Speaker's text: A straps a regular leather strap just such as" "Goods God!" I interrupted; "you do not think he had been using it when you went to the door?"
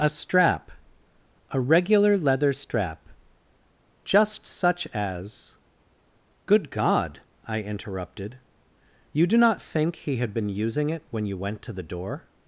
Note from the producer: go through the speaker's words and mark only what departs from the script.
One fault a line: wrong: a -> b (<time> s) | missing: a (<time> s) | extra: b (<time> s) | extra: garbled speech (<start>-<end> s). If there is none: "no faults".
wrong: straps -> strap (0.1 s)
wrong: Goods -> Good (6.5 s)